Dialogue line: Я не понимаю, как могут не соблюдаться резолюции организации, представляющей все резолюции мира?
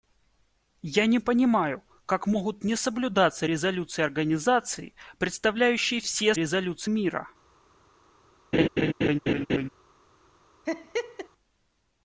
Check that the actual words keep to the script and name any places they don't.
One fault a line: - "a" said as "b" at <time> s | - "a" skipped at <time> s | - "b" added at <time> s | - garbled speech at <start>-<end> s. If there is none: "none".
none